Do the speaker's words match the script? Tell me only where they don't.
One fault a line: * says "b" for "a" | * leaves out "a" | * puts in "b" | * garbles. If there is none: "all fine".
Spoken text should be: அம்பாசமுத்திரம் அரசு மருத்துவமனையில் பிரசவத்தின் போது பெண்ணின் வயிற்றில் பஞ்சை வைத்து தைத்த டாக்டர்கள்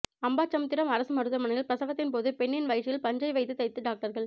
all fine